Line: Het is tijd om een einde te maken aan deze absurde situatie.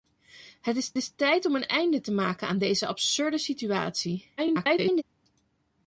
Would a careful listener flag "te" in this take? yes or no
no